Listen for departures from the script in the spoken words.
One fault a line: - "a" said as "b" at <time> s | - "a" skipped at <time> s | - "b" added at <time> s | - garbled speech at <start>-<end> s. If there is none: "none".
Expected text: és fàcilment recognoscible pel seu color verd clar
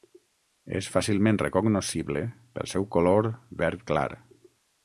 none